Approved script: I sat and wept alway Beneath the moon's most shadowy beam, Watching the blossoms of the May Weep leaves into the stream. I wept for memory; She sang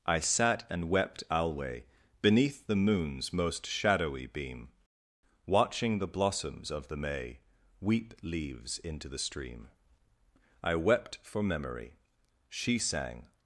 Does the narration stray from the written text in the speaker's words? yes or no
no